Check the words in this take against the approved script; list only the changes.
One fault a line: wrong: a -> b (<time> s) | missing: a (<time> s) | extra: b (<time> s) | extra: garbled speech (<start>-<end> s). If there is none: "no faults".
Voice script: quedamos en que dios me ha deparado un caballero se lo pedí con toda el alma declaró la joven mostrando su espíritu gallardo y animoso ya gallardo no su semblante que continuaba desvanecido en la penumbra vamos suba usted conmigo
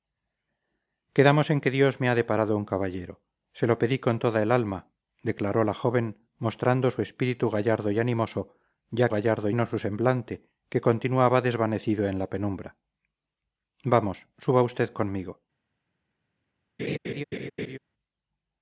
no faults